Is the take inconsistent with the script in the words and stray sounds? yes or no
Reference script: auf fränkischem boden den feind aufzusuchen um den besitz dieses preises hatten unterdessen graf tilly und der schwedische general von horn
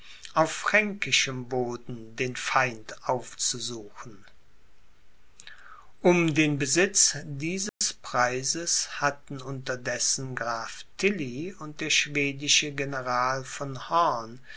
yes